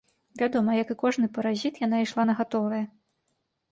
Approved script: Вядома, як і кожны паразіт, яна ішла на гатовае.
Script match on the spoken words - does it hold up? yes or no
yes